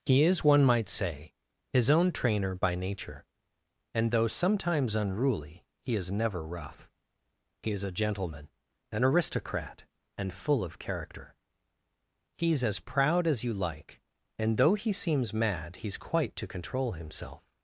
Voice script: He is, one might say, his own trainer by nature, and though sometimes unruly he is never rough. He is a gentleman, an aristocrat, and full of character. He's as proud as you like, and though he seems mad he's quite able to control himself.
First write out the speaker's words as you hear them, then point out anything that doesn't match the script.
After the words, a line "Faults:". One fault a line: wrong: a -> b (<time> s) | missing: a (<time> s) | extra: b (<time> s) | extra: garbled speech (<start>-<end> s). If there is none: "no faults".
He is, one might say, his own trainer by nature, and though sometimes unruly he is never rough. He is a gentleman, an aristocrat, and full of character. He's as proud as you like, and though he seems mad he's quite to control himself.
Faults:
missing: able (16.3 s)